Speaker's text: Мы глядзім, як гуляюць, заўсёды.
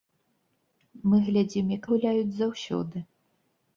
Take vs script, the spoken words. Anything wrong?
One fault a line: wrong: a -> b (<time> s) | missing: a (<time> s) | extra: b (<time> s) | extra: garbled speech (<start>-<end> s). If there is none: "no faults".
no faults